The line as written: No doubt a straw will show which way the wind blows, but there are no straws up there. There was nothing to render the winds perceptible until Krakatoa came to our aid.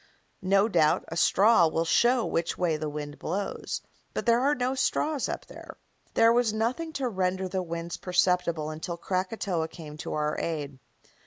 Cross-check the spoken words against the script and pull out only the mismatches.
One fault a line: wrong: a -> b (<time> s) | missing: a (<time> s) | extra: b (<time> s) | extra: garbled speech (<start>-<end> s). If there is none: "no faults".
no faults